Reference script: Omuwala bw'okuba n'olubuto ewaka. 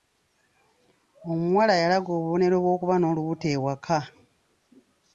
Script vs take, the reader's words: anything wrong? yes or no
yes